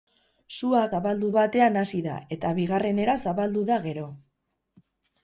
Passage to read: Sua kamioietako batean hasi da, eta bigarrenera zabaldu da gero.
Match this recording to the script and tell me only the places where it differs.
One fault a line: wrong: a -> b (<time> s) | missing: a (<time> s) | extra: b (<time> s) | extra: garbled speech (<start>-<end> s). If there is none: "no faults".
wrong: kamioietako -> zabaldu (0.9 s)